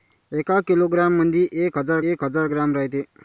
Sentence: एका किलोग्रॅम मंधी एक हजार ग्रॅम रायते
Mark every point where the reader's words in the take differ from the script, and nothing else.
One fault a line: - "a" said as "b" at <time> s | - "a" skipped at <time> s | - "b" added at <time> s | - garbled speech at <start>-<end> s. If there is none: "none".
- "एक हजार" added at 2.1 s